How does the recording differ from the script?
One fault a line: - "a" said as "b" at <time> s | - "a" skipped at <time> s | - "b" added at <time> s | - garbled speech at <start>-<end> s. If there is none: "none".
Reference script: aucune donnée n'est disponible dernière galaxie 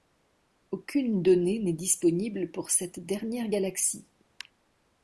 - "pour cette" added at 2.5 s